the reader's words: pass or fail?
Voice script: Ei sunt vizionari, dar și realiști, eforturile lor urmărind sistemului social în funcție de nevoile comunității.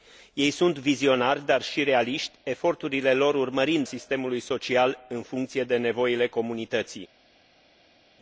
pass